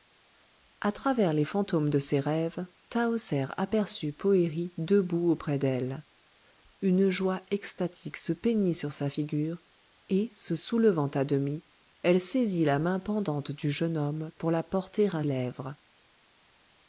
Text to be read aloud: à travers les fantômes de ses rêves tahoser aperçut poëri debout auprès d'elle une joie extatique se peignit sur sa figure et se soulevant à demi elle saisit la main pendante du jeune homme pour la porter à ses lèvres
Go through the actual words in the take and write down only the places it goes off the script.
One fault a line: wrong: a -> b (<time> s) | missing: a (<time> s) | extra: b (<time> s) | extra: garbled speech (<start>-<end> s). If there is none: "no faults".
missing: ses (15.2 s)